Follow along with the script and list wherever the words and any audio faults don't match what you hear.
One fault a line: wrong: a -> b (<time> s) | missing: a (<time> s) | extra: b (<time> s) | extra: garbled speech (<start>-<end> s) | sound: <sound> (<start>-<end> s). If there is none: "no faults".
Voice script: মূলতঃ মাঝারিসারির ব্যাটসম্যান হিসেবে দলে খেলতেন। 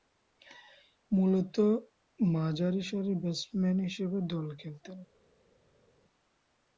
no faults